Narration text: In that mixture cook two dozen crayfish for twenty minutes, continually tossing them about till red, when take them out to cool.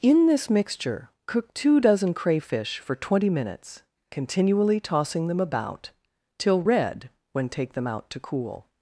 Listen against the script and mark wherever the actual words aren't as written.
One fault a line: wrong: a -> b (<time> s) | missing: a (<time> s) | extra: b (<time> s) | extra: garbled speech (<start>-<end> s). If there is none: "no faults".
wrong: that -> this (0.2 s)